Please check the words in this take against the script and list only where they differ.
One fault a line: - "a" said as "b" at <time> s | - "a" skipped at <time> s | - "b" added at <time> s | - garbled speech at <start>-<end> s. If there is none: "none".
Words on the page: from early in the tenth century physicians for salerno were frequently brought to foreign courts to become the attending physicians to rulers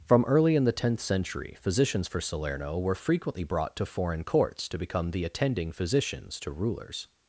none